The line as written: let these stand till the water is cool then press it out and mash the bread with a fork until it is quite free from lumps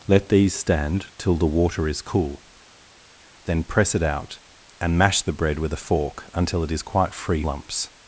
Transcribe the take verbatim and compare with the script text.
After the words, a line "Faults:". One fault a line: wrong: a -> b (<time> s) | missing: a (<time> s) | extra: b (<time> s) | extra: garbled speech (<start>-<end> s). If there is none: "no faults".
let these stand till the water is cool then press it out and mash the bread with a fork until it is quite free lumps
Faults:
missing: from (7.4 s)